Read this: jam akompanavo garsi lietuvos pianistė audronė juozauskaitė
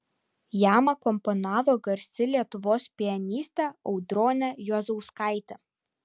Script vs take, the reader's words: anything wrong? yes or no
no